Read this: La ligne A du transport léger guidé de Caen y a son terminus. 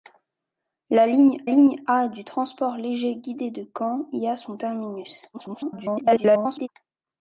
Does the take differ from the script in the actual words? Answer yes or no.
yes